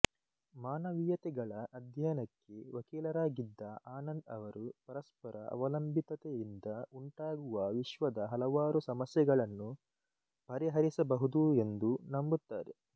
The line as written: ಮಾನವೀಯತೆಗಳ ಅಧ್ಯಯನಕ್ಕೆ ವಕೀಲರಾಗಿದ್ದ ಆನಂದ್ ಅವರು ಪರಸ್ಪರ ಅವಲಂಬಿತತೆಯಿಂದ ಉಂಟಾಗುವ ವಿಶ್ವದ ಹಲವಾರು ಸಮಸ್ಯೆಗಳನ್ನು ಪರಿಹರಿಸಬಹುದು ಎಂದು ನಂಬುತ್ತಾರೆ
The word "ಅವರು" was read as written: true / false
true